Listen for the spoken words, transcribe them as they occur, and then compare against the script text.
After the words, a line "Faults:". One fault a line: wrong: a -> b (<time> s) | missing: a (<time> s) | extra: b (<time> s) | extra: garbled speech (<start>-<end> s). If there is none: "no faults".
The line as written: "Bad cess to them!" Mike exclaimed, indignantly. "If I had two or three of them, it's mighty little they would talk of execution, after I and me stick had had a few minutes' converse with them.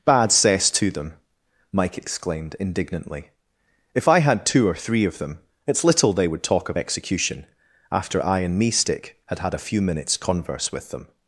"Bad cess to them!" Mike exclaimed, indignantly. "If I had two or three of them, it's little they would talk of execution, after I and me stick had had a few minutes' converse with them.
Faults:
missing: mighty (5.8 s)